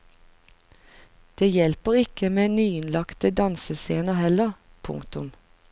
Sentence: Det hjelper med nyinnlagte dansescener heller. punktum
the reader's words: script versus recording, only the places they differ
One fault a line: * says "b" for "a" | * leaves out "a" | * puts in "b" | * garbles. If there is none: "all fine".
* puts in "ikke"